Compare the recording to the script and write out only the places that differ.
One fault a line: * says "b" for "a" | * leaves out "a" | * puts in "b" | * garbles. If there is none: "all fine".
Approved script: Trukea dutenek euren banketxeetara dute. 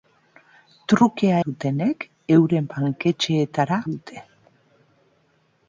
all fine